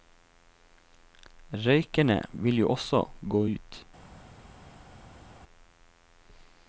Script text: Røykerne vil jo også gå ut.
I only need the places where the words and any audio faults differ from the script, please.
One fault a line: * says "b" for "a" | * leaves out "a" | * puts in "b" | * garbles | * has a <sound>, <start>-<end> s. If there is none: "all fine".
all fine